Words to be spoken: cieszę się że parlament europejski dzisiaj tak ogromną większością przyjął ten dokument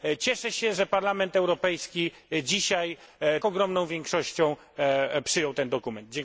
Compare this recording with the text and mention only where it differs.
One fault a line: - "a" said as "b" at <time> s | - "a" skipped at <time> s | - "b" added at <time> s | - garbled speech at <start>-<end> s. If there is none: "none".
- "tak" skipped at 3.0 s